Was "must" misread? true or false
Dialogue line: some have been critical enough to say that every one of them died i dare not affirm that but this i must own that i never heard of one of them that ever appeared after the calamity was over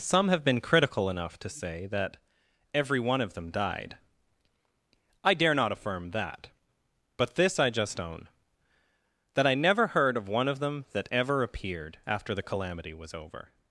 true